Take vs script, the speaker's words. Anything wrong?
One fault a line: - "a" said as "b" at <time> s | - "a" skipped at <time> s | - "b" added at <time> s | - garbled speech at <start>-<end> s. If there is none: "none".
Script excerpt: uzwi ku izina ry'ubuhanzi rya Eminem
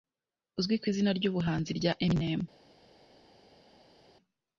none